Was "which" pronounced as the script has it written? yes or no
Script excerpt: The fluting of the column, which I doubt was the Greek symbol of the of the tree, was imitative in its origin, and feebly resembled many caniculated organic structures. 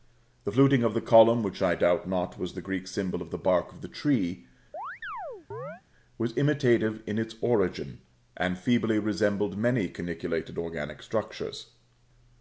yes